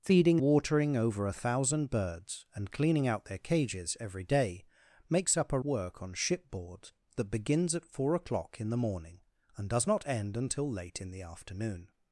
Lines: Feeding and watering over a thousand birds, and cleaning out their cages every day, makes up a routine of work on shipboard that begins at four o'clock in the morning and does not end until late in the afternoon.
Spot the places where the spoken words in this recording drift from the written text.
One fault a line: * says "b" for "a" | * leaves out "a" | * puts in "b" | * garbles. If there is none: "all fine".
* leaves out "and"
* leaves out "routine of"